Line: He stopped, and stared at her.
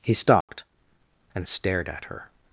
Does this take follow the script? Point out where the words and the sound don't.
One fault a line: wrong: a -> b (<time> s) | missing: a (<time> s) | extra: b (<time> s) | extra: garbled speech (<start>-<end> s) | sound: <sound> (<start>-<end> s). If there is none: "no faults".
sound: dropout (0.4-0.5 s)